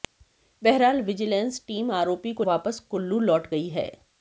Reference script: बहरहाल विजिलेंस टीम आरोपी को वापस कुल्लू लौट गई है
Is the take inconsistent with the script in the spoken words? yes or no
no